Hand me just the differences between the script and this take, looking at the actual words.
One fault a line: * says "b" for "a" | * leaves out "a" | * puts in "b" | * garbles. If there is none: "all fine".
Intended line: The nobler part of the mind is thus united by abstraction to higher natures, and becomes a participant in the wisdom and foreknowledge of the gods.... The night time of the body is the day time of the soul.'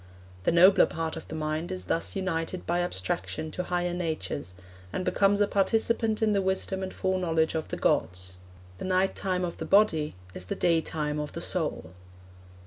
all fine